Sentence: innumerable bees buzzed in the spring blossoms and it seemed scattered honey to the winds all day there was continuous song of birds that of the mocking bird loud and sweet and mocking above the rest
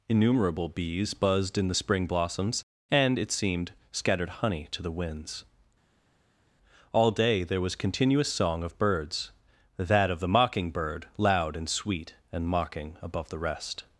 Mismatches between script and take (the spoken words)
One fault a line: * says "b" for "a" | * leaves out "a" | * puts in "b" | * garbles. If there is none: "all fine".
all fine